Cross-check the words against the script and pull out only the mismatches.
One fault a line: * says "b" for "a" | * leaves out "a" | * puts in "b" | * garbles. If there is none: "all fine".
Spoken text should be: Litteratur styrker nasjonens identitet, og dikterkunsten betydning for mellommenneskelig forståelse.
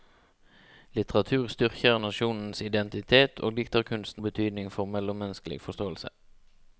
all fine